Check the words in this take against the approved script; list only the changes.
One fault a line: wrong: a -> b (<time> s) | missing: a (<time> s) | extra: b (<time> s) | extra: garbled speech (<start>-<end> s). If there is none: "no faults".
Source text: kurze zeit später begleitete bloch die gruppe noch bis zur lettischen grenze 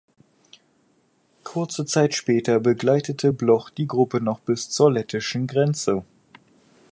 no faults